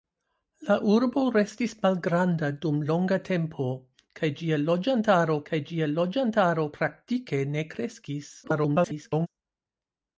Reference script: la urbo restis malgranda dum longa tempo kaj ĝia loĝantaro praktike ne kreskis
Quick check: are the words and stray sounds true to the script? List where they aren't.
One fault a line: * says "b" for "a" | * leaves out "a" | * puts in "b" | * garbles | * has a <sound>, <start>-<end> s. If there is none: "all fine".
* puts in "kaj ĝia loĝantaro"
* garbles